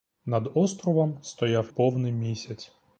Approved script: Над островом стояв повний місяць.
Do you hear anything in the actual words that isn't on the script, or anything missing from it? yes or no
no